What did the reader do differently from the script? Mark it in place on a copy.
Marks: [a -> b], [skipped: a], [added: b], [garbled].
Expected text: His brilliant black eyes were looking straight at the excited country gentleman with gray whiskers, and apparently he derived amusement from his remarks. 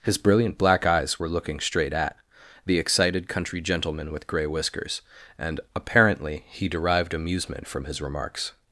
His brilliant black eyes were looking straight at the excited country gentleman with gray whiskers, and apparently he derived amusement from his remarks.